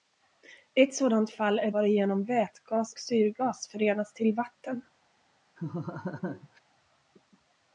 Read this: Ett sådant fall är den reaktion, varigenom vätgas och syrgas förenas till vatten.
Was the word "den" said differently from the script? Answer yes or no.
yes